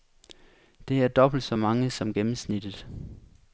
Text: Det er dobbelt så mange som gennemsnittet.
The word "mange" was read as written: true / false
true